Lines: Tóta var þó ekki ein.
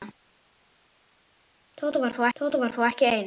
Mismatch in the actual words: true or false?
true